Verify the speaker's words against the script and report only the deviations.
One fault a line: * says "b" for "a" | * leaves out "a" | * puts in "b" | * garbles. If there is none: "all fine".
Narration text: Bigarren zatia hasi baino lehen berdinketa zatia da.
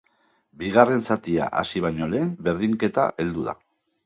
* says "heldu" for "zatia"